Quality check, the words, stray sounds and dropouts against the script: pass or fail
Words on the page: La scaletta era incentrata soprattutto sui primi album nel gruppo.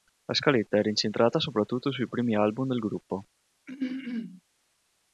fail